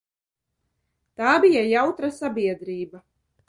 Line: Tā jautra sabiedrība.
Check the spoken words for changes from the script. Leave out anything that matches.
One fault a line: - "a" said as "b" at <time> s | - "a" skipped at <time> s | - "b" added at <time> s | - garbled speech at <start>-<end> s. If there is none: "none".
- "bija" added at 1.4 s